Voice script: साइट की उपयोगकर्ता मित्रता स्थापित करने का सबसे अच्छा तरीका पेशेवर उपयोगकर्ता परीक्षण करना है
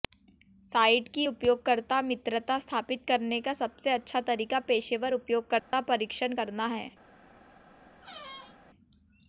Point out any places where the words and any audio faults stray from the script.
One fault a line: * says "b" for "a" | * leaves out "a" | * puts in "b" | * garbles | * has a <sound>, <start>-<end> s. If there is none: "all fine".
* has a dropout, 5.6-5.7 s
* has a squeak, 8.0-8.6 s